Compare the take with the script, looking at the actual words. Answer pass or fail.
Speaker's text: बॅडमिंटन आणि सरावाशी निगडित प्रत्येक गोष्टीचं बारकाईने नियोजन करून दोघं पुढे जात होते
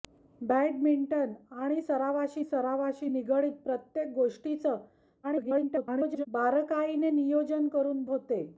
fail